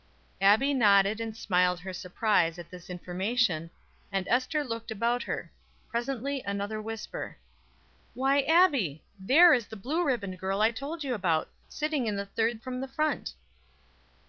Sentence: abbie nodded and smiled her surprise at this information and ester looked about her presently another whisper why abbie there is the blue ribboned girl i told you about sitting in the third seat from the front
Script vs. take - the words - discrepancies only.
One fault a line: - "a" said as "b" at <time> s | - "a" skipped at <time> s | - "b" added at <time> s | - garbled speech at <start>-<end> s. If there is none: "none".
- "seat" skipped at 12.6 s